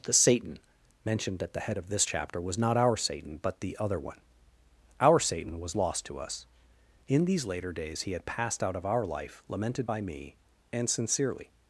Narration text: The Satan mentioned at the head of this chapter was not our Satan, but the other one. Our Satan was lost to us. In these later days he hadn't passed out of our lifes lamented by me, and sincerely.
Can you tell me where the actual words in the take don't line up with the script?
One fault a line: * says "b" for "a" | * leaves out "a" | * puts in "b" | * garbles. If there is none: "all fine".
* says "had" for "hadn't"
* says "life" for "lifes"